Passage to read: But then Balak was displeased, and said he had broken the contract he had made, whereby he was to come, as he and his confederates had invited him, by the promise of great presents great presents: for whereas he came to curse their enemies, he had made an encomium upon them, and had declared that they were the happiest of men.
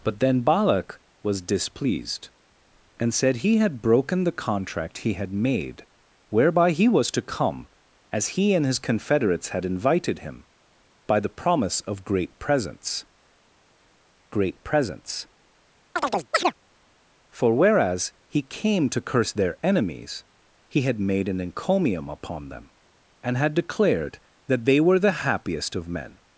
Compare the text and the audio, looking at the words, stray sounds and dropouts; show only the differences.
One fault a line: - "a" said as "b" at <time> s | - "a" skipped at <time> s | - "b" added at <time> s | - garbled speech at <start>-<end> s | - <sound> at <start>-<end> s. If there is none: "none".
- chirp at 16.0-16.5 s